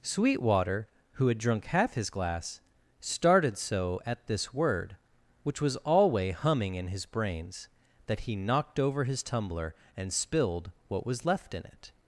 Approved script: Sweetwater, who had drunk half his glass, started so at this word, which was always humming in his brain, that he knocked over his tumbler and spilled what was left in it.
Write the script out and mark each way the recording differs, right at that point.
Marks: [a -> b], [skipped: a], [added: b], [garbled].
Sweetwater, who had drunk half his glass, started so at this word, which was [always -> alway] humming in his [brain, -> brains] that he knocked over his tumbler and spilled what was left in it.